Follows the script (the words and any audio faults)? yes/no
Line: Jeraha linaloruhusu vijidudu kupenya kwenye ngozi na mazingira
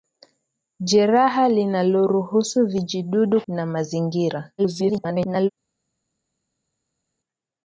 no